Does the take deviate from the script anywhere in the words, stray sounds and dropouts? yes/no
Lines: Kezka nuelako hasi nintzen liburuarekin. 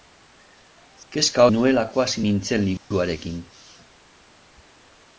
yes